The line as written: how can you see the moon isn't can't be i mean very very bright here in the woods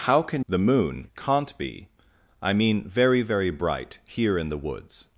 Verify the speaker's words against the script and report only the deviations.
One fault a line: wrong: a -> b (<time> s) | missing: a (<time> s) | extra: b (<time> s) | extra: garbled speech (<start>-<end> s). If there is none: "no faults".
missing: you see (0.5 s)
missing: isn't (1.1 s)